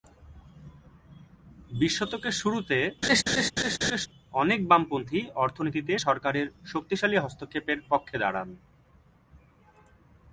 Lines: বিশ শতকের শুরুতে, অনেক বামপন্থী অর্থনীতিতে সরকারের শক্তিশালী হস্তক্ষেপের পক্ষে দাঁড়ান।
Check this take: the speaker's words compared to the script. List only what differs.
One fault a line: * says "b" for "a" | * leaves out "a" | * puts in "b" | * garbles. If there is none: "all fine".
all fine